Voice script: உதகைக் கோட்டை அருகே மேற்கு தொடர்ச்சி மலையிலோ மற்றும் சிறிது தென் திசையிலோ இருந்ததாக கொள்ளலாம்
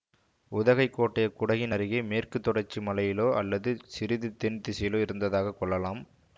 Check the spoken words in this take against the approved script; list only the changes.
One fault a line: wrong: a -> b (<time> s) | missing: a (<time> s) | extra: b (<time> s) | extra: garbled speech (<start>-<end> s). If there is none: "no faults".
extra: குடகின் (1.3 s)
wrong: மற்றும் -> அல்லது (3.3 s)